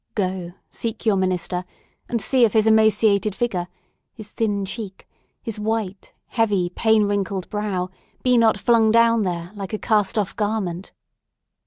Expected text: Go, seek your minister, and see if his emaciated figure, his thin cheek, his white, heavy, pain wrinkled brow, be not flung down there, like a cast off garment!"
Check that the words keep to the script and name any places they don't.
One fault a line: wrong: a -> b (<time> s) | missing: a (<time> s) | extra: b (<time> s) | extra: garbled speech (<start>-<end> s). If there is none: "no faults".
no faults